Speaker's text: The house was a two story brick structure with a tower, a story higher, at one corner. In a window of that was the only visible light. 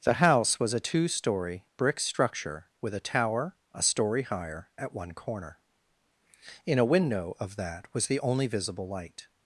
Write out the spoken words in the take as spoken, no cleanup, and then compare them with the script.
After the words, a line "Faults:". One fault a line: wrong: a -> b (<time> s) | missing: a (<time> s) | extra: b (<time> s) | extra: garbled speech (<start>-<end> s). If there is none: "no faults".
The house was a two story brick structure with a tower, a story higher, at one corner. In a window of that was the only visible light.
Faults:
no faults